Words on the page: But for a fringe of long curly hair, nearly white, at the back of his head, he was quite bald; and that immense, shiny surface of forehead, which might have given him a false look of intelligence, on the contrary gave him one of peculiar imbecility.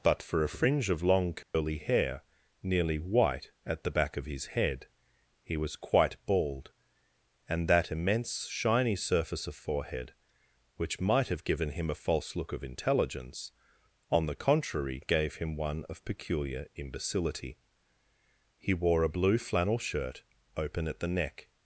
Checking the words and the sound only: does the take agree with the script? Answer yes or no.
no